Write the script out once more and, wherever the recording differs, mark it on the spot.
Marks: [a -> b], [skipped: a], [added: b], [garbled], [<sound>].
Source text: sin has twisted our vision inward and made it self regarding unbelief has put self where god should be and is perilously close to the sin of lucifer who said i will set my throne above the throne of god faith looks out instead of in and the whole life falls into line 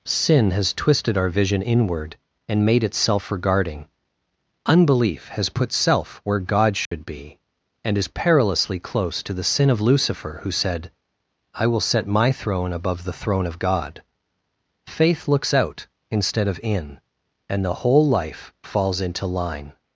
sin has twisted our vision inward and made it self regarding unbelief has put self where god should [dropout] be and is perilously close to the sin of lucifer who said i will set my throne above the throne of god faith looks out instead of in and the whole life falls into line